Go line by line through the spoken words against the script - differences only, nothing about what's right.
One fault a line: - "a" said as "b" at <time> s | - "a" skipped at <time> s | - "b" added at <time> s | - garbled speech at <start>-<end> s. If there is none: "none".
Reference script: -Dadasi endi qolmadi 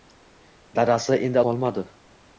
none